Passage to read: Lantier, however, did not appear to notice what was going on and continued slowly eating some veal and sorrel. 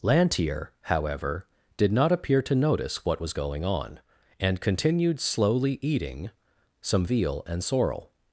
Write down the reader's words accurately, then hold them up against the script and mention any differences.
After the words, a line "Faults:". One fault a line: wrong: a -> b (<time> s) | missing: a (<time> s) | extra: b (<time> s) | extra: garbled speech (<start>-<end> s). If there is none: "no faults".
Lantier, however, did not appear to notice what was going on and continued slowly eating some veal and sorrel.
Faults:
no faults